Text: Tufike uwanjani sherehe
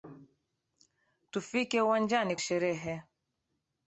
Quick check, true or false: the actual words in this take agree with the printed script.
true